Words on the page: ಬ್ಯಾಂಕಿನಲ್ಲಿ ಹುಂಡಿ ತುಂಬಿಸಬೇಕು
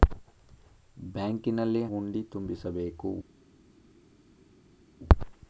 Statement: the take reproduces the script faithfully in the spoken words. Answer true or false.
true